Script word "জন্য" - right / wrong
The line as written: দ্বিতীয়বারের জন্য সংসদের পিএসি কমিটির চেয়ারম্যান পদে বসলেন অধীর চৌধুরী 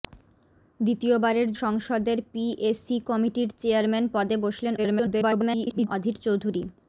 wrong